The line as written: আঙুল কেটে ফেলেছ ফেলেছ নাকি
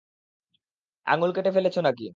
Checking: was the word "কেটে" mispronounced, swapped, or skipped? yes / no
no